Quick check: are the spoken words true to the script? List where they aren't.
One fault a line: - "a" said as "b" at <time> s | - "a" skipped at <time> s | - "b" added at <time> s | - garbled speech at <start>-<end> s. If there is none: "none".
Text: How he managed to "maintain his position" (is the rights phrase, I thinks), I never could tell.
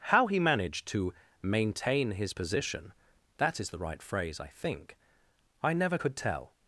- "that" added at 3.4 s
- "rights" said as "right" at 3.8 s
- "thinks" said as "think" at 4.5 s